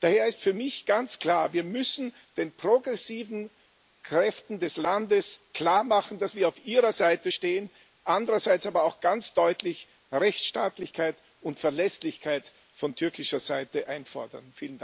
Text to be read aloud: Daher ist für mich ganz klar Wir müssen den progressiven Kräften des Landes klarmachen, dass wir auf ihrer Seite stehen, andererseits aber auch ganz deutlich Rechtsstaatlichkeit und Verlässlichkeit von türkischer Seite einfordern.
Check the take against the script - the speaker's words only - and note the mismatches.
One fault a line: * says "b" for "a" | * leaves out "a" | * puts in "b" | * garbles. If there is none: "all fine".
all fine